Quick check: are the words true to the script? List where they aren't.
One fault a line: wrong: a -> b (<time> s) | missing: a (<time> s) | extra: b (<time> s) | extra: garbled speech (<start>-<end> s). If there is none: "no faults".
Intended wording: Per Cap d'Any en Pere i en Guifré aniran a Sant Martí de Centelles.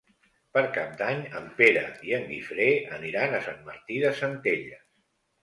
no faults